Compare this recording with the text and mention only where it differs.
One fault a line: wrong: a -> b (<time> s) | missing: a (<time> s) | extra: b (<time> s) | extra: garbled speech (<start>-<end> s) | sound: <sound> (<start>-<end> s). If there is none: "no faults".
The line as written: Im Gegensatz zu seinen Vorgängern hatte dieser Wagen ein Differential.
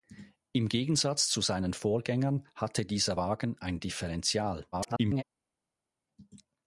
extra: garbled speech (4.7-5.2 s)